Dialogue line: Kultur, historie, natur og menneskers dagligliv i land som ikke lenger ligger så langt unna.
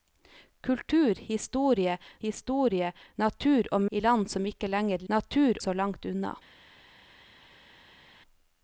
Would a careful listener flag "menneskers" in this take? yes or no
yes